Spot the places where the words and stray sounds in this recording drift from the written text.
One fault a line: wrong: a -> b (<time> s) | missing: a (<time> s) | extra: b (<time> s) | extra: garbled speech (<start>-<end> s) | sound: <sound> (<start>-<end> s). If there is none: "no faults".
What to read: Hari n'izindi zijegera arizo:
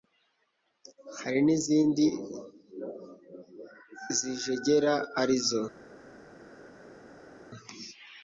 no faults